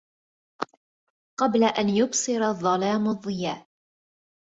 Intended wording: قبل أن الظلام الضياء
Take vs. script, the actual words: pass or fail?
fail